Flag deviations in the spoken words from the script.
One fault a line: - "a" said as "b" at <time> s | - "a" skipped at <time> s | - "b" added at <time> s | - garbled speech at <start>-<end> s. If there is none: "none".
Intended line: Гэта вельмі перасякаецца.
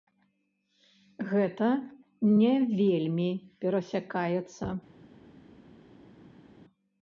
- "не" added at 2.4 s